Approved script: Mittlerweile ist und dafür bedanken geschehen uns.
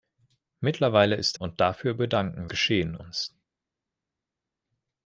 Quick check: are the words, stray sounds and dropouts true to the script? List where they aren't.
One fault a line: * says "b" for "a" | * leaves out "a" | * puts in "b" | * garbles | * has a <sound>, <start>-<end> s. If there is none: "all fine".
all fine